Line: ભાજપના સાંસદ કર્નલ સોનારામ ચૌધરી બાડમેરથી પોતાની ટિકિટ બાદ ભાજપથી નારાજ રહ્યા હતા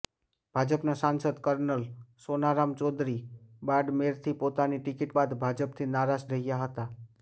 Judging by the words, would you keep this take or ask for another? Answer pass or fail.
pass